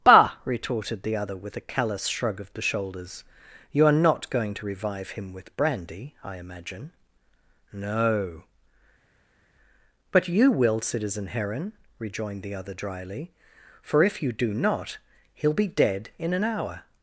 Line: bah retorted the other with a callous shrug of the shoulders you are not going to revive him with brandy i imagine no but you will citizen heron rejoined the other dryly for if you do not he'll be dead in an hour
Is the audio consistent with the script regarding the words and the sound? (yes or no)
yes